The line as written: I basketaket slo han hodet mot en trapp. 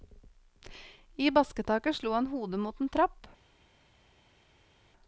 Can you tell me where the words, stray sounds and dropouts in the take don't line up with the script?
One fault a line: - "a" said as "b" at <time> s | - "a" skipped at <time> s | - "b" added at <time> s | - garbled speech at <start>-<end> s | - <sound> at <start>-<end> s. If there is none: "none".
none